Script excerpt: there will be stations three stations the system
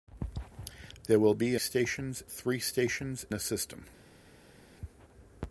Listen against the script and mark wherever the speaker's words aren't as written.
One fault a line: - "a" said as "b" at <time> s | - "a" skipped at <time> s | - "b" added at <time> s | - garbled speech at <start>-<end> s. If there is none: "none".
none